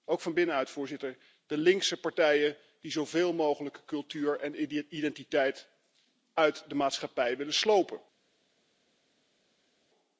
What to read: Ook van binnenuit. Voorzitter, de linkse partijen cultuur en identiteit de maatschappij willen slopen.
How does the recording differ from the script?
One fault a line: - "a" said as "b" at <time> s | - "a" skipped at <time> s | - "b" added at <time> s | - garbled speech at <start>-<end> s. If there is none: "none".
- "die zoveel mogelijk" added at 2.8 s
- "uit" added at 6.3 s